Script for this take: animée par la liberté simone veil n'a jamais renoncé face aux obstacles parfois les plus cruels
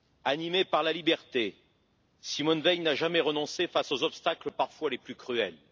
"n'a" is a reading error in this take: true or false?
false